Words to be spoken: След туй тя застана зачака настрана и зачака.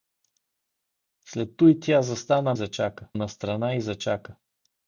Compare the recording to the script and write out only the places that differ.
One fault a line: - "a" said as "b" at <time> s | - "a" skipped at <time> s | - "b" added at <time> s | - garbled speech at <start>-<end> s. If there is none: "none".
none